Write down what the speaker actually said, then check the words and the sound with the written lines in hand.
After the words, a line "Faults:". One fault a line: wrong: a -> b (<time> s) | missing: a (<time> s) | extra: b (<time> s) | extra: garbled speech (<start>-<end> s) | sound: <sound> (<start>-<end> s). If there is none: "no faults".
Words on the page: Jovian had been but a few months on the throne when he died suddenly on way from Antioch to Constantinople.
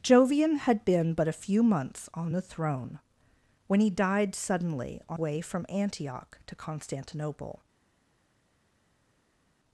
Jovian had been but a few months on the throne when he died suddenly on way from Antioch to Constantinople.
Faults:
no faults